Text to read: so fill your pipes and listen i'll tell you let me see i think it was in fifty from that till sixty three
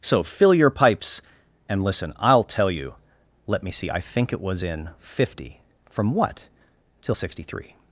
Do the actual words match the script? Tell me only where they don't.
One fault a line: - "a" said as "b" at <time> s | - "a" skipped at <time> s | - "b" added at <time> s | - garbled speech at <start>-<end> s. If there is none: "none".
- "that" said as "what" at 6.1 s